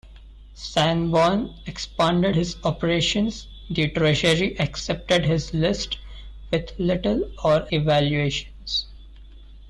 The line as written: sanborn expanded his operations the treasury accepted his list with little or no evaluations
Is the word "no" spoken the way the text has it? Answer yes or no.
no